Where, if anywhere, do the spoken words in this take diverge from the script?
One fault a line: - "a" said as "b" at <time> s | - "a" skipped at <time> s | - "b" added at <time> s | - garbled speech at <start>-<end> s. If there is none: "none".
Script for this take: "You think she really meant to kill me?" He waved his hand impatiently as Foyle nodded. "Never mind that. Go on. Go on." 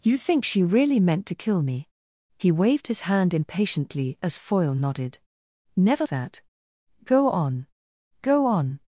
- "mind" skipped at 6.1 s